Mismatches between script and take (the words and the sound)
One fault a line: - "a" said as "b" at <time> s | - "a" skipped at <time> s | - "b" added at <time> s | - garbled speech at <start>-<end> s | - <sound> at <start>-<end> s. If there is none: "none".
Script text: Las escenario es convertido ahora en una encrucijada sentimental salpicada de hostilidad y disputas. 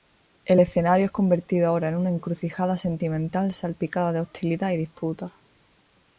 - "Las" said as "El" at 0.5 s